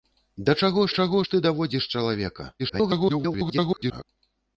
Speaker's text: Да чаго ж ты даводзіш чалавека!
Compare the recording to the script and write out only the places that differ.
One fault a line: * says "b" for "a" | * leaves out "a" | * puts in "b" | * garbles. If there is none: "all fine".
* puts in "чаго"
* garbles